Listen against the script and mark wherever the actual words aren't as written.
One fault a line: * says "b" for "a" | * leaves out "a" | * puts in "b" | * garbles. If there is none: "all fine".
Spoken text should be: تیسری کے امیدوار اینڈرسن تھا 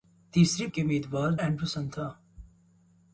all fine